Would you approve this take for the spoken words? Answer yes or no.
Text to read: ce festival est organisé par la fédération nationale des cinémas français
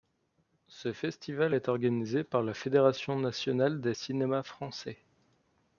yes